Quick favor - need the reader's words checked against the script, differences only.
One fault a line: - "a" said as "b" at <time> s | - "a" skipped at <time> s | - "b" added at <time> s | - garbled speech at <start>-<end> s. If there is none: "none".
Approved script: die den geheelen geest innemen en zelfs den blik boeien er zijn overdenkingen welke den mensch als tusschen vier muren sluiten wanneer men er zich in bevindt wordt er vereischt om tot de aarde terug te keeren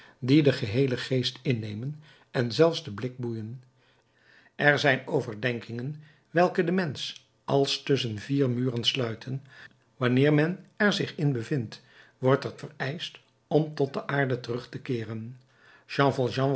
none